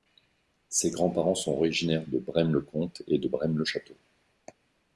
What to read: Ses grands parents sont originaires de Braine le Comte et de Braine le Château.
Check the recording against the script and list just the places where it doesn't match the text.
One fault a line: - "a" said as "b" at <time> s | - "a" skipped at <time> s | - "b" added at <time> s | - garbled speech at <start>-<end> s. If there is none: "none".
none